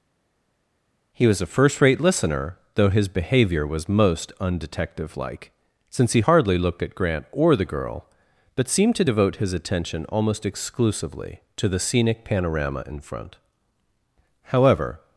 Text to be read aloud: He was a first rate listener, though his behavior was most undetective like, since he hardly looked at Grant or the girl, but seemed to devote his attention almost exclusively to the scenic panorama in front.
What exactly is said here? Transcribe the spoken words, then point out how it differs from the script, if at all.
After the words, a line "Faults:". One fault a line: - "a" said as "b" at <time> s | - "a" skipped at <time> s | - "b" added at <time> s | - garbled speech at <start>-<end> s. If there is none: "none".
He was a first rate listener, though his behavior was most undetective like, since he hardly looked at Grant or the girl, but seemed to devote his attention almost exclusively to the scenic panorama in front. However
Faults:
- "However" added at 14.4 s